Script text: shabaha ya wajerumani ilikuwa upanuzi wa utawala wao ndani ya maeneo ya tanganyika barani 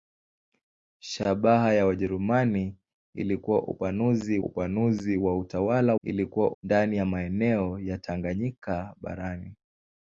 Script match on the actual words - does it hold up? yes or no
no